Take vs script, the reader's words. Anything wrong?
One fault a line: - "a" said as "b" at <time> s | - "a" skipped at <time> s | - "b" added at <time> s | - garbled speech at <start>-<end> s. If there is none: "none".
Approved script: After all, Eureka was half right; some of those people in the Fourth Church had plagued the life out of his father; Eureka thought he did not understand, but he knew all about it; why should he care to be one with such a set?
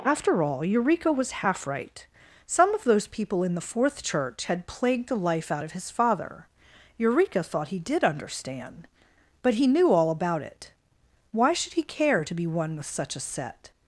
- "not" skipped at 8.0 s